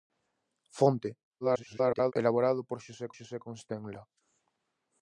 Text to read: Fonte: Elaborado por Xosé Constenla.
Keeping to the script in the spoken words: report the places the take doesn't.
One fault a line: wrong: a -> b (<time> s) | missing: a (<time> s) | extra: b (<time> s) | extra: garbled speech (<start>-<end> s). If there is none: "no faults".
extra: garbled speech (1.4-2.1 s)
extra: Xosé (3.2 s)